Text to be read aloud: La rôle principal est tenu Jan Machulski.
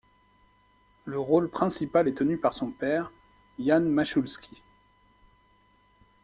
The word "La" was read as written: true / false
false